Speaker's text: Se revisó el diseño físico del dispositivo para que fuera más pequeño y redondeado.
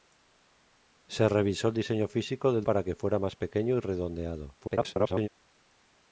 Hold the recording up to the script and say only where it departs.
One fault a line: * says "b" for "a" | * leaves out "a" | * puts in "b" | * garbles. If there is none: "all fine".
* leaves out "dispositivo"
* garbles